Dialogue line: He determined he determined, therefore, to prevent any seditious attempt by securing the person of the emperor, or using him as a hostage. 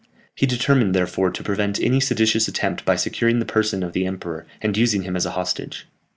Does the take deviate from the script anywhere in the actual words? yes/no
yes